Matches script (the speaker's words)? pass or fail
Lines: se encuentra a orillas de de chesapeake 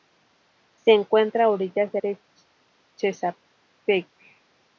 pass